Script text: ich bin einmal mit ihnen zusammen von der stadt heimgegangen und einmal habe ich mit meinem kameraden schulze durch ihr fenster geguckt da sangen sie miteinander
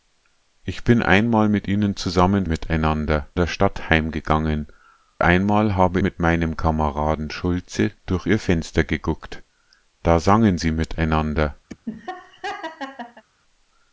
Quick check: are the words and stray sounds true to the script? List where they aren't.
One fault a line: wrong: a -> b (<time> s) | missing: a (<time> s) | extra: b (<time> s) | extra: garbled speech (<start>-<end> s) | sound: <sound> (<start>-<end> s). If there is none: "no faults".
wrong: von -> miteinander (2.4 s)
missing: und (4.7 s)
missing: ich (6.0 s)
sound: laugh (11.7-13.2 s)